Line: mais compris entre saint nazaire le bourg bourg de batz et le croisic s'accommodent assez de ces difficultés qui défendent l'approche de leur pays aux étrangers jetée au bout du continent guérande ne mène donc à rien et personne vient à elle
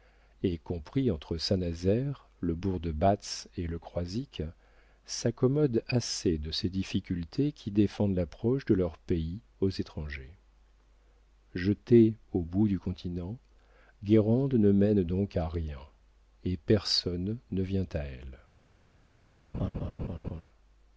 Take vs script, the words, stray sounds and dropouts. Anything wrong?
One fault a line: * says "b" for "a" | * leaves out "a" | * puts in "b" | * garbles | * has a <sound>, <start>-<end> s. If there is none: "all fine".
* says "et" for "mais"
* leaves out "bourg"
* puts in "ne"
* has a laugh, 19.5-20.4 s